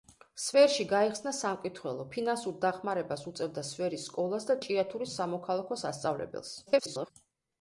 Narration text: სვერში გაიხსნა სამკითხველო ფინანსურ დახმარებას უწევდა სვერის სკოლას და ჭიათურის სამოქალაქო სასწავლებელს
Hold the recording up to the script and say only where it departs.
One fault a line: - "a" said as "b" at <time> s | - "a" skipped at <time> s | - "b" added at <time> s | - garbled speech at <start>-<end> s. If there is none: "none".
- garbled speech at 6.7-7.1 s